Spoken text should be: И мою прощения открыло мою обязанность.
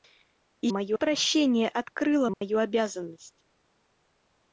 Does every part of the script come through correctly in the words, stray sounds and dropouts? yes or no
no